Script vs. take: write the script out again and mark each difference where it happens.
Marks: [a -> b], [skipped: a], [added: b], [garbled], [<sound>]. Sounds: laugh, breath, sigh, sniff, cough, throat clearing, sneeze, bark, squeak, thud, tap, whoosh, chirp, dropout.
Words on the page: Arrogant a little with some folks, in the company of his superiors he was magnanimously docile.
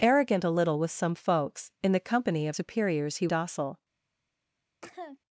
Arrogant a little with some folks, in the company of [skipped: his] superiors he [skipped: was magnanimously] docile. [cough]